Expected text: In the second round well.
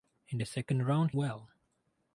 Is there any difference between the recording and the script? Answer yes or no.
no